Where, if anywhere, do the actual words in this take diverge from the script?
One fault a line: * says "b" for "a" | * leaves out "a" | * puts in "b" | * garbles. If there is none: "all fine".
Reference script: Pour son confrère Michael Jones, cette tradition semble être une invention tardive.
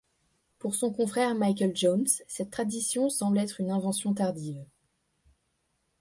all fine